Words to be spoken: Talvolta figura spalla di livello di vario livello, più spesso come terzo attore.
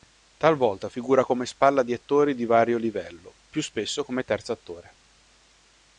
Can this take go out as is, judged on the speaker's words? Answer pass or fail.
fail